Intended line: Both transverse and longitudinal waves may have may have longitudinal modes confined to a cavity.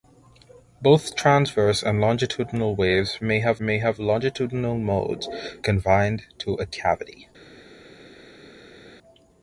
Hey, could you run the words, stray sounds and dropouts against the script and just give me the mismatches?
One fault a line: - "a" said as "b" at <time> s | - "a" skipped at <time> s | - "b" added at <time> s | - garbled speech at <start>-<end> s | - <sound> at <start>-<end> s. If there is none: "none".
none